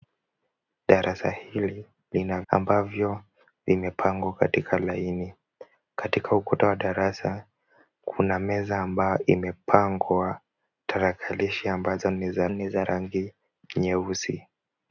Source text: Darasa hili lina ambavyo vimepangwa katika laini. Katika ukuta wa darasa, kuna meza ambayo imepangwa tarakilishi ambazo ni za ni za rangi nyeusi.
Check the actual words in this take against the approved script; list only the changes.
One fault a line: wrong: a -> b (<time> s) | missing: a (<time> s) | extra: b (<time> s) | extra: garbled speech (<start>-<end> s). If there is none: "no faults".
no faults